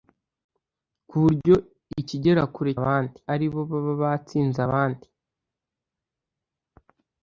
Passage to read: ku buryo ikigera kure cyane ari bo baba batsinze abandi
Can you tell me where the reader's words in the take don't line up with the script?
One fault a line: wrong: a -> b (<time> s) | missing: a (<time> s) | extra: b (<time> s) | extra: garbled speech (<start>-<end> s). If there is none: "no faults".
wrong: cyane -> abandi (2.8 s)